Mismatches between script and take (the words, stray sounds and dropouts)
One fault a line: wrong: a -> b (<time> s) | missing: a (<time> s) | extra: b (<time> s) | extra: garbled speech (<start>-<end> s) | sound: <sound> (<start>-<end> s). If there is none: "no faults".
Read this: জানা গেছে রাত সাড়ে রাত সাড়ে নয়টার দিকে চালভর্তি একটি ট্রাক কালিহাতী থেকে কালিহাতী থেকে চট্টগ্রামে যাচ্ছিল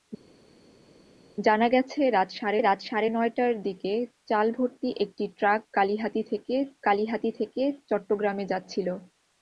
no faults